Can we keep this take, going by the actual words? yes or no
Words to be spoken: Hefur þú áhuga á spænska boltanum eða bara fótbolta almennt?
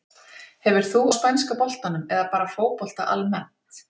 no